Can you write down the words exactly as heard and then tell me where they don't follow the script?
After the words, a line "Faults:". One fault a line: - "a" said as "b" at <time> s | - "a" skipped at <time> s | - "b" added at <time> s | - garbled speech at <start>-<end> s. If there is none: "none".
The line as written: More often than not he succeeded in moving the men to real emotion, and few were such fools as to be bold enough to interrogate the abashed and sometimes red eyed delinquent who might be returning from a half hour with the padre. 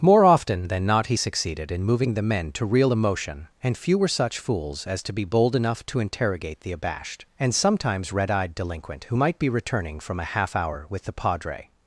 More often than not he succeeded in moving the men to real emotion, and few were such fools as to be bold enough to interrogate the abashed and sometimes red eyed delinquent who might be returning from a half hour with the padre.
Faults:
none